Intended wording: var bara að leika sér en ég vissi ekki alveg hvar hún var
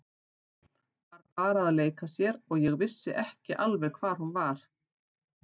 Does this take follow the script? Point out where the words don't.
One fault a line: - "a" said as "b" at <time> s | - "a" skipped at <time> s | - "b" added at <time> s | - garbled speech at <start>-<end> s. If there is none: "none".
- "en" said as "og" at 2.5 s